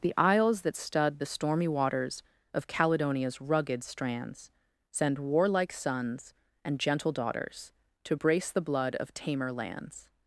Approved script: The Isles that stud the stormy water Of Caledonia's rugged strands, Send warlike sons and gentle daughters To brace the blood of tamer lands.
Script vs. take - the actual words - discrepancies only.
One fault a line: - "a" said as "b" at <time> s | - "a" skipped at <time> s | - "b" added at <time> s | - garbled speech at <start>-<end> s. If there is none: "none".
- "water" said as "waters" at 1.7 s